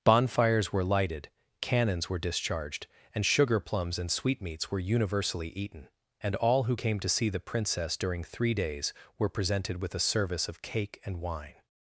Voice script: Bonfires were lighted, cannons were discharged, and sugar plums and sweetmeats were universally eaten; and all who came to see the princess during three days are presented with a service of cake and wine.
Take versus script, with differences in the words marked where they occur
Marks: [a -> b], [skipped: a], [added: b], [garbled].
Bonfires were lighted, cannons were discharged, and sugar plums and sweetmeats were universally eaten; and all who came to see the princess during three days [are -> were] presented with a service of cake and wine.